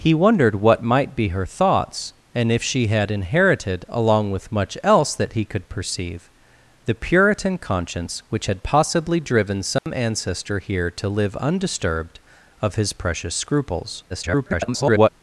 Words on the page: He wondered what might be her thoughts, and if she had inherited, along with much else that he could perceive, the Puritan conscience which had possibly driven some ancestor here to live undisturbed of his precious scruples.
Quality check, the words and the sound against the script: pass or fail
fail